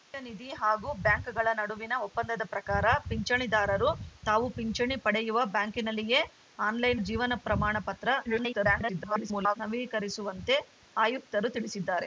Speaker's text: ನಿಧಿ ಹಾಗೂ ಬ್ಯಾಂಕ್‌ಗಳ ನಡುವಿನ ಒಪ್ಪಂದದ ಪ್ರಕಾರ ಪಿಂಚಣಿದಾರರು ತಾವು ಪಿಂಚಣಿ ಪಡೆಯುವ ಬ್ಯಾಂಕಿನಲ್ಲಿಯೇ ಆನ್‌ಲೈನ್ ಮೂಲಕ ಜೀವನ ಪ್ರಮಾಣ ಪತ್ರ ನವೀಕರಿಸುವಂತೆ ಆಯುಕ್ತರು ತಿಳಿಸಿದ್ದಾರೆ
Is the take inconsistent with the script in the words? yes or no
yes